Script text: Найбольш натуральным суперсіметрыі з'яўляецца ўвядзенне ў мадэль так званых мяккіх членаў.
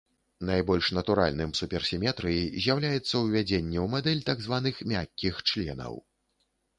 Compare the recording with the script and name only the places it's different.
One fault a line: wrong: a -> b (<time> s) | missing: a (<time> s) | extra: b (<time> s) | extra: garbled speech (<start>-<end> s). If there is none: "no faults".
no faults